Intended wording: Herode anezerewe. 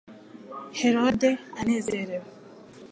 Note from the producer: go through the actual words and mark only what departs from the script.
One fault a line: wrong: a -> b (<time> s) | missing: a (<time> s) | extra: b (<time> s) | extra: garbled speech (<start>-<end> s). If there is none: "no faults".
no faults